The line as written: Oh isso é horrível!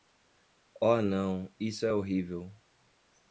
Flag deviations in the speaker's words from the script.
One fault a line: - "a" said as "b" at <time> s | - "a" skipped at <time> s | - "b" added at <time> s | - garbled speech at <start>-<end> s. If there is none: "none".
- "não" added at 1.0 s